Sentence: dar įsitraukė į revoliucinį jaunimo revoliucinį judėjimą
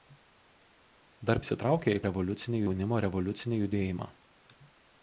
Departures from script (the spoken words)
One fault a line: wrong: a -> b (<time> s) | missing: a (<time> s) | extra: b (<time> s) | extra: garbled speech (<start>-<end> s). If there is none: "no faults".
no faults